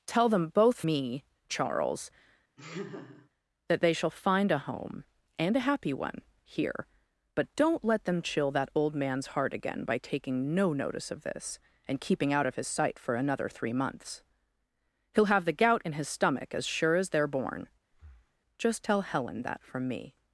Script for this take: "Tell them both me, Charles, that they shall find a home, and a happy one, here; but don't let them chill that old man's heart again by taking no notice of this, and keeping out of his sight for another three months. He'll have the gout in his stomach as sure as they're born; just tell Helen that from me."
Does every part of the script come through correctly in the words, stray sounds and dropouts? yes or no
no